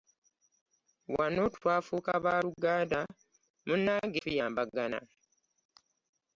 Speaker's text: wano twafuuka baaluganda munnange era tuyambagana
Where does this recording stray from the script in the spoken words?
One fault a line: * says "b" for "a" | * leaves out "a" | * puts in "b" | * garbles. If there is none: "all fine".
* leaves out "era"